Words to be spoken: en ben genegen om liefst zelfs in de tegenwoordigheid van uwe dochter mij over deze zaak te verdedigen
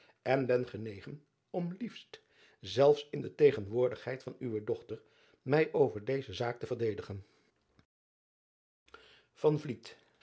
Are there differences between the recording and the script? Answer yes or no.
no